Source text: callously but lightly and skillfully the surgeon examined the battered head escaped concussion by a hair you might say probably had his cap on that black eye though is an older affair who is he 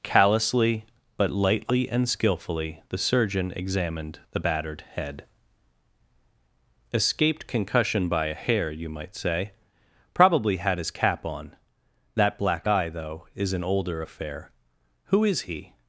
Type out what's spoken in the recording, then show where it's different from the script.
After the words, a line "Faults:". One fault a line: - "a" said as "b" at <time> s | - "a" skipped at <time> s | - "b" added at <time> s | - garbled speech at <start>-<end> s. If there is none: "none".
callously but lightly and skillfully the surgeon examined the battered head escaped concussion by a hair you might say probably had his cap on that black eye though is an older affair who is he
Faults:
none